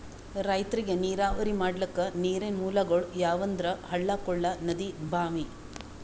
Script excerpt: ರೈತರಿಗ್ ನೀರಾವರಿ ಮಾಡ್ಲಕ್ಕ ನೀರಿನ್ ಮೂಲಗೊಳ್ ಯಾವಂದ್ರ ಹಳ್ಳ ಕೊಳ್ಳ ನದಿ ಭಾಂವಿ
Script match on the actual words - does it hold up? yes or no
yes